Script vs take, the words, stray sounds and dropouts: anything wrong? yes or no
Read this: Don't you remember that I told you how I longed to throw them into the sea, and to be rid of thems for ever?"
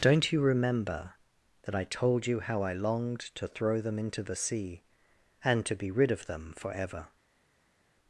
yes